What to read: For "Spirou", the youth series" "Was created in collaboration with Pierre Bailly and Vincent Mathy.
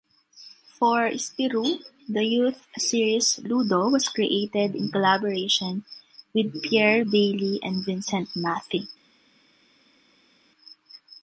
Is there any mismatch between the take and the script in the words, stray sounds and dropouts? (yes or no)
yes